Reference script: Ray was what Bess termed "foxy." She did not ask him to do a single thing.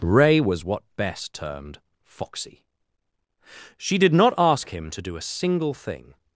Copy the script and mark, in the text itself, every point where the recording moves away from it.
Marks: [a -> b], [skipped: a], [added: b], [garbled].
Ray was what Bess termed "foxy." She did not ask him to do a single thing.